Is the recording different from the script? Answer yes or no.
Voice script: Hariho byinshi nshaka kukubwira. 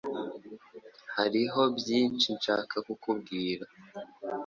no